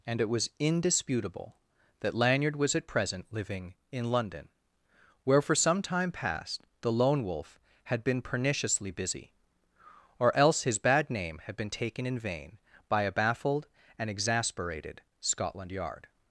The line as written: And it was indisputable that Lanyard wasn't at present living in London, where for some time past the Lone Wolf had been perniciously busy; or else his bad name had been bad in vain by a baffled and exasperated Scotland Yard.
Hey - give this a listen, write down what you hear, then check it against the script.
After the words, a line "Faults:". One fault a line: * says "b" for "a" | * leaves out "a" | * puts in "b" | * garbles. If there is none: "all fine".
And it was indisputable that Lanyard was at present living in London, where for some time past the Lone Wolf had been perniciously busy; or else his bad name had been taken in vain by a baffled and exasperated Scotland Yard.
Faults:
* says "was" for "wasn't"
* says "taken" for "bad"